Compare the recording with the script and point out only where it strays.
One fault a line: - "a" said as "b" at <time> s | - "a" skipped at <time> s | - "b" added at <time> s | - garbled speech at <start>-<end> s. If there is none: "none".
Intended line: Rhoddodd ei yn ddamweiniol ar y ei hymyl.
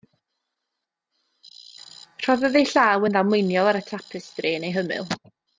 - "llaw" added at 2.7 s
- "tapestri yn" added at 3.9 s